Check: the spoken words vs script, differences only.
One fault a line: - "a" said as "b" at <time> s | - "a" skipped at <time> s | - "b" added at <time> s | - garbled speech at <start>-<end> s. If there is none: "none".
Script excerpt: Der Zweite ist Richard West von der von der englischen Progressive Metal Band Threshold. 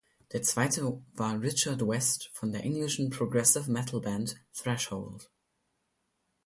- "ist" said as "war" at 1.1 s
- "von der" skipped at 2.6 s